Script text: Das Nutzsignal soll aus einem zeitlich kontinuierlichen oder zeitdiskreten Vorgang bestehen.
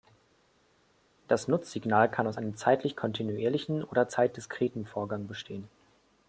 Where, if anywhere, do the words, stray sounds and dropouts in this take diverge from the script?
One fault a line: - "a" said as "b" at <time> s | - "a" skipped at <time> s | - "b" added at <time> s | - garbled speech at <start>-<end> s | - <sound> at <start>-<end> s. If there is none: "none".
- "soll" said as "kann" at 2.1 s